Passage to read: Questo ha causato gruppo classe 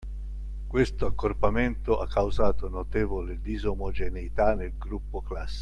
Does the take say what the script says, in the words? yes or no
no